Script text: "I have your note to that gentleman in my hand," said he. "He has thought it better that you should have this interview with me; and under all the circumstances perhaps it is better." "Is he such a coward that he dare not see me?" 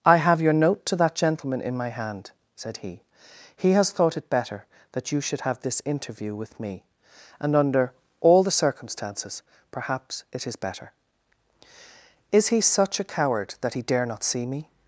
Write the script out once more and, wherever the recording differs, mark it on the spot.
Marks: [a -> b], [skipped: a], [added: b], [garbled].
"I have your note to that gentleman in my hand," said he. "He has thought it better that you should have this interview with me; and under all the circumstances perhaps it is better." "Is he such a coward that he dare not see me?"